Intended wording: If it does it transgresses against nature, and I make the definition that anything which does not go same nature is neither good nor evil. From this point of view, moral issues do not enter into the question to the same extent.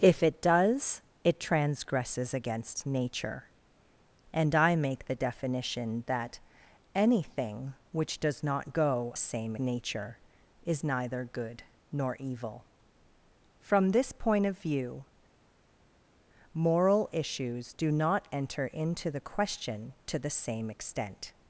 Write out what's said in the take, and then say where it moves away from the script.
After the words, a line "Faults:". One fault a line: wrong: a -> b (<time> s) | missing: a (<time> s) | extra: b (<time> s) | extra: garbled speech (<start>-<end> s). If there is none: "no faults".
If it does it transgresses against nature, and I make the definition that anything which does not go same nature is neither good nor evil. From this point of view, moral issues do not enter into the question to the same extent.
Faults:
no faults